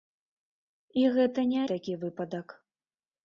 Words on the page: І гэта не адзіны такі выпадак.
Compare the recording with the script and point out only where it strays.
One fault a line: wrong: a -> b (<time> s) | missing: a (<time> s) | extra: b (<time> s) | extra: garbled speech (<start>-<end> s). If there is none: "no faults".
missing: адзіны (1.6 s)